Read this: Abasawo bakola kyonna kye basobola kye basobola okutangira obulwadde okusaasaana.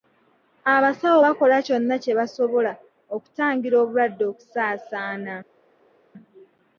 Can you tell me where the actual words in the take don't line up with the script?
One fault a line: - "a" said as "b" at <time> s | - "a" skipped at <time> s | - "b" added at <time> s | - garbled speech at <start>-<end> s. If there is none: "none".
- "kye basobola" skipped at 2.7 s